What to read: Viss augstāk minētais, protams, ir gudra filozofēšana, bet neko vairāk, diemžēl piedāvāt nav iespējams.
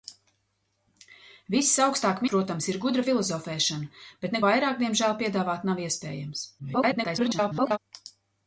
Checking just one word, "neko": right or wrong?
wrong